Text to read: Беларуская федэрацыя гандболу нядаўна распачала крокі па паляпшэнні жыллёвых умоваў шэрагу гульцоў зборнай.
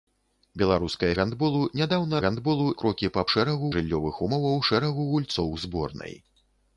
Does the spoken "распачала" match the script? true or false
false